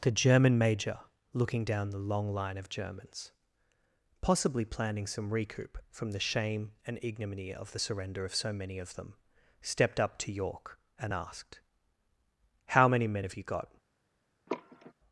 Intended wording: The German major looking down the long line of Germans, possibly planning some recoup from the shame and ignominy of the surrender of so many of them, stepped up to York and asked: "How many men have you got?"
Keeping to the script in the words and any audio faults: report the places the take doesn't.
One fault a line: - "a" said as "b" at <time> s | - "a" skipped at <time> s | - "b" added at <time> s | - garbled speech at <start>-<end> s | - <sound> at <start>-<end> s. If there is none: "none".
- sigh at 14.5-14.9 s